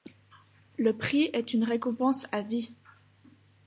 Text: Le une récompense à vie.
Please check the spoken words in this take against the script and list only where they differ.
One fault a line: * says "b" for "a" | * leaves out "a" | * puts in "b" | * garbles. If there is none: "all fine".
* puts in "prix est"